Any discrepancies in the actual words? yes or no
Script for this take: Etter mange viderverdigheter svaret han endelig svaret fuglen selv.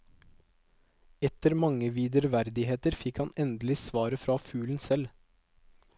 yes